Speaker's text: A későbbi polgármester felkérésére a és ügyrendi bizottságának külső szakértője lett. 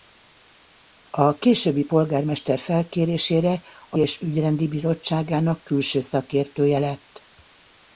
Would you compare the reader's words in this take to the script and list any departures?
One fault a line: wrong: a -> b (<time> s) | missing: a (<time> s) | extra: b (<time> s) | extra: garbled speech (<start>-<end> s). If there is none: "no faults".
no faults